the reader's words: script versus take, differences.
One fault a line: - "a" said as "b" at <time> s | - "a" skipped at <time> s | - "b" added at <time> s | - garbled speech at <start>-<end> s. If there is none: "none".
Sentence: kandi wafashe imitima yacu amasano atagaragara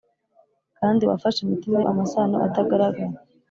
- "yacu" skipped at 1.8 s